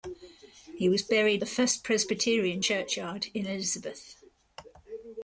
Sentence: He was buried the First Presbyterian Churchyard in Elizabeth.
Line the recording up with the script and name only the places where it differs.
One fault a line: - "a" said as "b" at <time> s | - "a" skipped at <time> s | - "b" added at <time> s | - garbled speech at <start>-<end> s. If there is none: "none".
none